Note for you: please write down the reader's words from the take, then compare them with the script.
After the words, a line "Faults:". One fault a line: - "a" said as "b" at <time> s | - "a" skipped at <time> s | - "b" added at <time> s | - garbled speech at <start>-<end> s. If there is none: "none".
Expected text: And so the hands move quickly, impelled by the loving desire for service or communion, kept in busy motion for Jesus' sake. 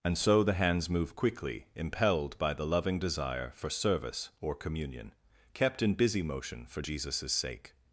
And so the hands move quickly, impelled by the loving desire for service or communion, kept in busy motion for Jesus' sake.
Faults:
none